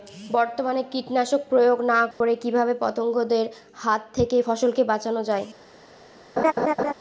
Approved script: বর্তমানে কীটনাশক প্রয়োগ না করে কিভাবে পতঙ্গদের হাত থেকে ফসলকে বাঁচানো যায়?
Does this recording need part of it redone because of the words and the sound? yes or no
yes